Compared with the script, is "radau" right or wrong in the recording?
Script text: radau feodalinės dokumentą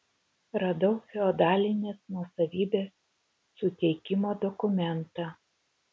right